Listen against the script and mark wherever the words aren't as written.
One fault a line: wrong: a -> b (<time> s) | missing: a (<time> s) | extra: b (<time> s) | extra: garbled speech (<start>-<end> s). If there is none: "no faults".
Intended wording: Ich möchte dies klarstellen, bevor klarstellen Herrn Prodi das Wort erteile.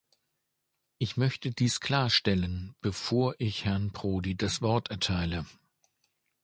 wrong: klarstellen -> ich (3.4 s)